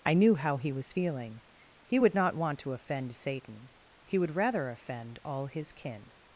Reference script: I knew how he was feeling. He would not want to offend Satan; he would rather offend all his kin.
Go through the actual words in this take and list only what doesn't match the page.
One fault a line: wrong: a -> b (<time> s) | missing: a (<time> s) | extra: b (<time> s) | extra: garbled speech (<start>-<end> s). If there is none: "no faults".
no faults